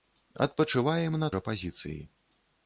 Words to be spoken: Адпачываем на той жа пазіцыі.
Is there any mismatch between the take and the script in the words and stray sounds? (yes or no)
yes